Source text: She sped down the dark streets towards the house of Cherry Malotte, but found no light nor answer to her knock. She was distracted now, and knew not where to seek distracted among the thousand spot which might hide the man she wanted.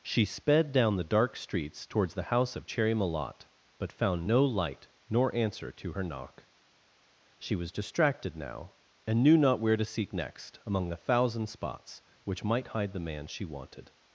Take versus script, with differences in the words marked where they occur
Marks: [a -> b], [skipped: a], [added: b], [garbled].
She sped down the dark streets towards the house of Cherry Malotte, but found no light nor answer to her knock. She was distracted now, and knew not where to seek [distracted -> next] among the thousand [spot -> spots] which might hide the man she wanted.